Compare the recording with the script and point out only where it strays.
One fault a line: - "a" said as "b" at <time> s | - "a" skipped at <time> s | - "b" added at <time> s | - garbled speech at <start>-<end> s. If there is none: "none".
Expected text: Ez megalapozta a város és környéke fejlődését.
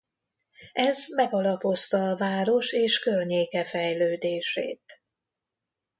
none